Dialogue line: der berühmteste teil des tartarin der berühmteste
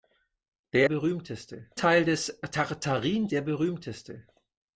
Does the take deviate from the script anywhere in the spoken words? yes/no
no